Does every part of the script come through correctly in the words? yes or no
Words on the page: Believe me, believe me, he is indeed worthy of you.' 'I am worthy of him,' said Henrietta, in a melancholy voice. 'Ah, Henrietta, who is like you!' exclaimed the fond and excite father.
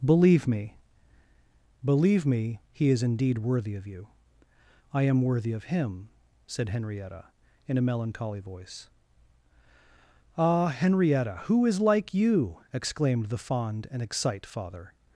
yes